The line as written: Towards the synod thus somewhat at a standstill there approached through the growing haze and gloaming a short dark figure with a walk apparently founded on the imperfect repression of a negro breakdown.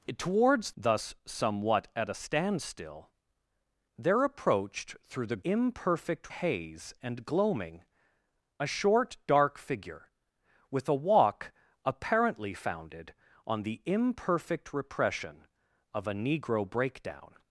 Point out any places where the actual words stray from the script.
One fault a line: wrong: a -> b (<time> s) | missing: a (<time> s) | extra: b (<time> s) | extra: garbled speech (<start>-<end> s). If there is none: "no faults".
missing: the synod (0.7 s)
wrong: growing -> imperfect (5.4 s)